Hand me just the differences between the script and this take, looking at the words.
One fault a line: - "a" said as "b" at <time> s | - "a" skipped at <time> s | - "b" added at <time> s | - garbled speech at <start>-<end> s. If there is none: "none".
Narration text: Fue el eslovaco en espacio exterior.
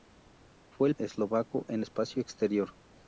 none